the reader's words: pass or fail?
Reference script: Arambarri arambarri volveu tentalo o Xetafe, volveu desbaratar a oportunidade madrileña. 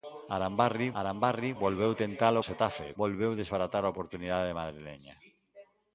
pass